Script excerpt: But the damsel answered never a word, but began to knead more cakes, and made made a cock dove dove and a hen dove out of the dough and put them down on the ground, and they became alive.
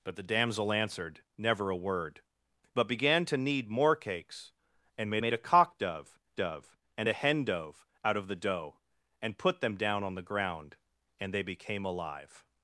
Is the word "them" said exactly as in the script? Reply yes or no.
yes